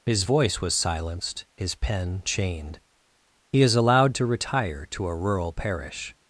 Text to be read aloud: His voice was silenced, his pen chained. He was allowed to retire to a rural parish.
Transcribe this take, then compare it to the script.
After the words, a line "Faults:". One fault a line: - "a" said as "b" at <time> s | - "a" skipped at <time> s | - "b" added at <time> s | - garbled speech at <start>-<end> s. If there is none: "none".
His voice was silenced, his pen chained. He is allowed to retire to a rural parish.
Faults:
- "was" said as "is" at 3.6 s